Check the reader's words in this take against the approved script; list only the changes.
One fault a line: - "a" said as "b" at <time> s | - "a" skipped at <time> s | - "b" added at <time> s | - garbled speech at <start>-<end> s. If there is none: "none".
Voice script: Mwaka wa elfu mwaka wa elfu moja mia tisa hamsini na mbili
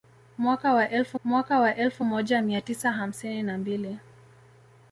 none